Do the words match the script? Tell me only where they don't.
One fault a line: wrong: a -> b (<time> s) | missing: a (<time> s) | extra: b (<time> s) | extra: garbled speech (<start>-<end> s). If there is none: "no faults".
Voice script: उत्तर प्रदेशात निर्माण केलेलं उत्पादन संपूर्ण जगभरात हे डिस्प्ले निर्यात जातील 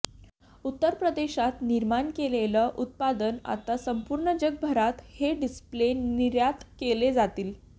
extra: आता (3.5 s)
extra: केले (6.8 s)